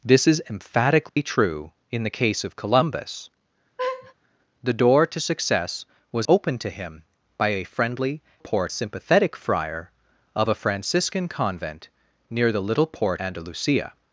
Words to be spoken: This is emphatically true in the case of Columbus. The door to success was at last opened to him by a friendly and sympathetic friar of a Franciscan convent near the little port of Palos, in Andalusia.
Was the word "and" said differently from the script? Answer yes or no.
yes